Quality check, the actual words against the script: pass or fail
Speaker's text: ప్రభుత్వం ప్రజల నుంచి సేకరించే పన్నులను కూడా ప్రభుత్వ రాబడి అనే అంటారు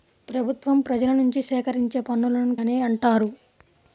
fail